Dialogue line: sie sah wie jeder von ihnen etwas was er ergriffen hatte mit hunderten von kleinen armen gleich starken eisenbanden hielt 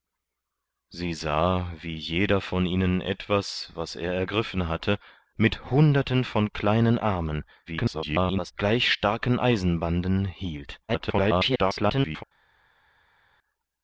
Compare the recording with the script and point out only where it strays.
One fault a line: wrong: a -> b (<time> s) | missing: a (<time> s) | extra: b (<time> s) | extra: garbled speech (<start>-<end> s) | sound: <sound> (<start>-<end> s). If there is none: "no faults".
extra: garbled speech (7.7-8.5 s)
extra: garbled speech (10.9-12.2 s)